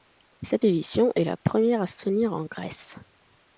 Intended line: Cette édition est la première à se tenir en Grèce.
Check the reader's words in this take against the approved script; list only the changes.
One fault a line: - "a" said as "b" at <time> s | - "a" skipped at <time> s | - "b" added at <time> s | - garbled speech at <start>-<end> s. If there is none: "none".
none